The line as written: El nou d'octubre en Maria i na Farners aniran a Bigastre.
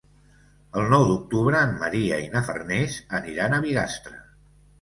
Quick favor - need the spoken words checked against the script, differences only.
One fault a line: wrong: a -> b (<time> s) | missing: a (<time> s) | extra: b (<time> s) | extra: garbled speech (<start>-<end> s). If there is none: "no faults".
no faults